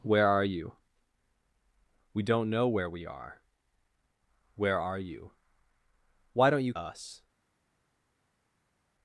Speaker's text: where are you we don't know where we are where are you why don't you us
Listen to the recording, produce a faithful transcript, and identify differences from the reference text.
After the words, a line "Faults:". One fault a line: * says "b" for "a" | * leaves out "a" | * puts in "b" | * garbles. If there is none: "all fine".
where are you we don't know where we are where are you why don't you us
Faults:
all fine